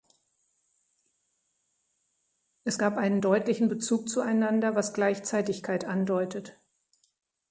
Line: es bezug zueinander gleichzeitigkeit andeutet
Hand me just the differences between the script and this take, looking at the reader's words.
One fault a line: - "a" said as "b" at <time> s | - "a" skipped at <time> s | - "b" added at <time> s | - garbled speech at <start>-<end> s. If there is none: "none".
- "gab einen deutlichen" added at 2.8 s
- "was" added at 4.7 s